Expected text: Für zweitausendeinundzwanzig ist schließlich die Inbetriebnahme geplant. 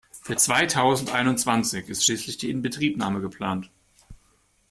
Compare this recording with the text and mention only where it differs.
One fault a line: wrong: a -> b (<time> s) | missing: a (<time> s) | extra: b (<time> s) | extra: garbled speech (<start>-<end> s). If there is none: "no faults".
no faults